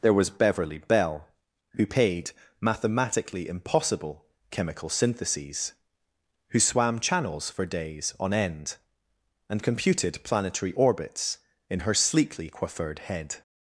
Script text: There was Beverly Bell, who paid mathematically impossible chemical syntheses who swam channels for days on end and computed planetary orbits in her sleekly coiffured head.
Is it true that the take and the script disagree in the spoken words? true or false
false